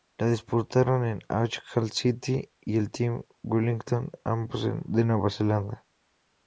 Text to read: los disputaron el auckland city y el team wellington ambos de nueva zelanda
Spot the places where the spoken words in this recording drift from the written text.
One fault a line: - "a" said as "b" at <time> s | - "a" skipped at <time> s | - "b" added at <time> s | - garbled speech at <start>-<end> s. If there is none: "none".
- "los" said as "la" at 0.2 s